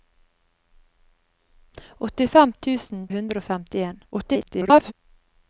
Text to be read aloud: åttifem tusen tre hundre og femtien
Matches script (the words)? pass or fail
fail